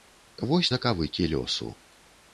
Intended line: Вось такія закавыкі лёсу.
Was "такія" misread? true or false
true